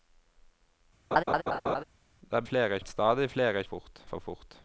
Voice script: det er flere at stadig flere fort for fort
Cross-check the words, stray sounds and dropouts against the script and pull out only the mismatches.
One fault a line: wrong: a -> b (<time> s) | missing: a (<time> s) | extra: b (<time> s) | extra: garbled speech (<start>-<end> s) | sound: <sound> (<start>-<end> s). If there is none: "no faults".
sound: laugh (1.1-1.8 s)